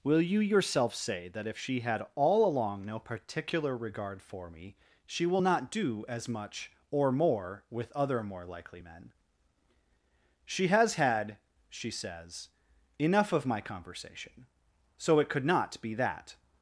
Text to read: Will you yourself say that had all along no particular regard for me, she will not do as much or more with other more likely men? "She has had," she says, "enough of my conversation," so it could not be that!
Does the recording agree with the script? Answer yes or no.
no